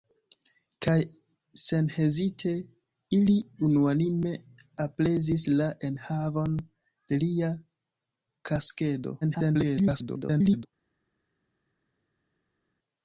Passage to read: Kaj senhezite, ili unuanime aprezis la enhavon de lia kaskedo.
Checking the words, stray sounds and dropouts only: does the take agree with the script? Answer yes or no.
no